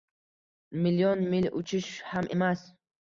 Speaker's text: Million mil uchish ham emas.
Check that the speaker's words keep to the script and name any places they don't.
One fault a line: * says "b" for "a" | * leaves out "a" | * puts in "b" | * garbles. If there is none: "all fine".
all fine